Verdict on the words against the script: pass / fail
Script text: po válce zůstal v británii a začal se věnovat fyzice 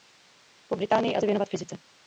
fail